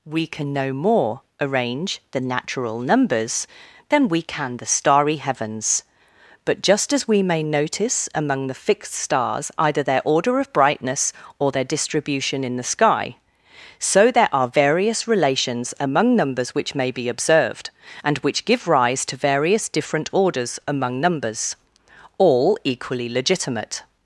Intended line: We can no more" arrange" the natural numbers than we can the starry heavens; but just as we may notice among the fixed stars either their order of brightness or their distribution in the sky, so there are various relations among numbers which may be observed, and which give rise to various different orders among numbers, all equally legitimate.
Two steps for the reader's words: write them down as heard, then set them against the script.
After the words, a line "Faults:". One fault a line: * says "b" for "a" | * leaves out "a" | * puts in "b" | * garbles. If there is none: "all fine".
We can no more" arrange" the natural numbers than we can the starry heavens; but just as we may notice among the fixed stars either their order of brightness or their distribution in the sky, so there are various relations among numbers which may be observed, and which give rise to various different orders among numbers, all equally legitimate.
Faults:
all fine